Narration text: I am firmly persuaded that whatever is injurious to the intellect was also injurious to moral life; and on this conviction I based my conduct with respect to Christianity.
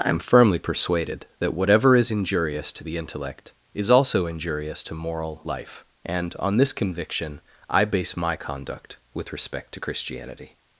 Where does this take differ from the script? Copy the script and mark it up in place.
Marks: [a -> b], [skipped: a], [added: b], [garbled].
I am firmly persuaded that whatever is injurious to the intellect [was -> is] also injurious to moral life; and on this conviction I [based -> base] my conduct with respect to Christianity.